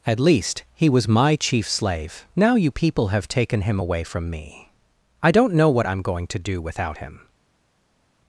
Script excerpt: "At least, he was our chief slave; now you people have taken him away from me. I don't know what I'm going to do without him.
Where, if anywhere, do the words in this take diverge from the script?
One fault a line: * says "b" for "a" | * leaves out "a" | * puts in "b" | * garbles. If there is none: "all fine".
* says "my" for "our"